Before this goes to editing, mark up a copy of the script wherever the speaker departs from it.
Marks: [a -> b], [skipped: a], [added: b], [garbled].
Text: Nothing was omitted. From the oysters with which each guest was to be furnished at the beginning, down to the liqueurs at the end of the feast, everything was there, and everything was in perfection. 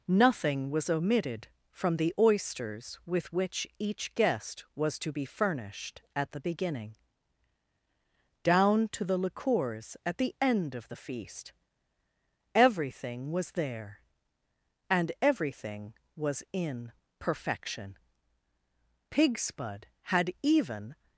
Nothing was omitted. From the oysters with which each guest was to be furnished at the beginning, down to the liqueurs at the end of the feast, everything was there, and everything was in perfection. [added: Pigspud had even]